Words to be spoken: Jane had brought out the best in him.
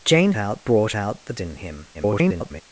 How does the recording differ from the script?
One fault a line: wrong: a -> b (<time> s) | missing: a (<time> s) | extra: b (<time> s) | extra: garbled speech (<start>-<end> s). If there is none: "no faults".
wrong: had -> out (0.4 s)
missing: best (1.3 s)
extra: garbled speech (1.9-2.6 s)